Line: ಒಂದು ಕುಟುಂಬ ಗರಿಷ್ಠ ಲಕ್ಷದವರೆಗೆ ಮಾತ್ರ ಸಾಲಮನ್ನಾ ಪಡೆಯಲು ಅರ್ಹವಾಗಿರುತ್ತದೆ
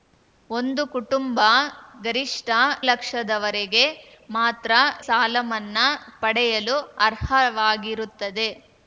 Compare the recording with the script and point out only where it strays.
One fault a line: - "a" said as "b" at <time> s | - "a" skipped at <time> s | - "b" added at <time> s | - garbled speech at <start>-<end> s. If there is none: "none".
none